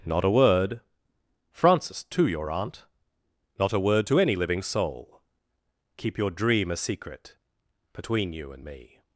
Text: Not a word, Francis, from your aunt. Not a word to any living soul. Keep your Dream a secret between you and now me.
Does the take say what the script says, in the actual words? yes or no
no